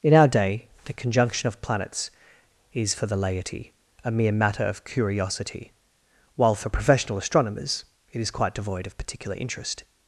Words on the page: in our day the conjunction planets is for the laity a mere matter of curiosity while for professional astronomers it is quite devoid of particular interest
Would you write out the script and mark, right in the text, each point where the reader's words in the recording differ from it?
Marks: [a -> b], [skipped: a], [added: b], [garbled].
in our day the conjunction [added: of] planets is for the laity a mere matter of curiosity while for professional astronomers it is quite devoid of particular interest